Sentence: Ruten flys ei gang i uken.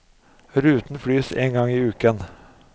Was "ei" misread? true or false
true